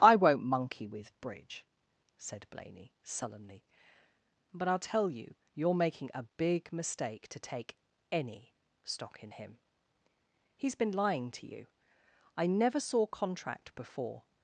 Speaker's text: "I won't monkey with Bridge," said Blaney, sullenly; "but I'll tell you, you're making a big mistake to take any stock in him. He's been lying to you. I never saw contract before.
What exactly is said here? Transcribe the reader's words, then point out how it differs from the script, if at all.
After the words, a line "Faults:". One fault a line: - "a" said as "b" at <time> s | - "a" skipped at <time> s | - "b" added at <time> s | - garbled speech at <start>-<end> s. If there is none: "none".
"I won't monkey with Bridge," said Blaney, sullenly; "but I'll tell you, you're making a big mistake to take any stock in him. He's been lying to you. I never saw contract before.
Faults:
none